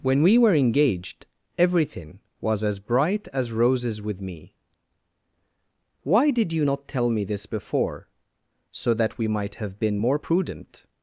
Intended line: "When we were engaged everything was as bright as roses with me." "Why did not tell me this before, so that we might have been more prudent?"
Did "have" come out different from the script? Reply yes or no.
no